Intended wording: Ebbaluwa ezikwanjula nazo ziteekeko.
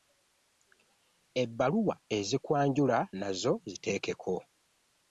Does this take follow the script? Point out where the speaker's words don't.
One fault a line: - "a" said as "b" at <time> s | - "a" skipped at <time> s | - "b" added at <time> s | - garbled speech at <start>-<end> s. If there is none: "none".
none